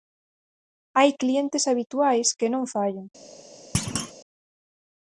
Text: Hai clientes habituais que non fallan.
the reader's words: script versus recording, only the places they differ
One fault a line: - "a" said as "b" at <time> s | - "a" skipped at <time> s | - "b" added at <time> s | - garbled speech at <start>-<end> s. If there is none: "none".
none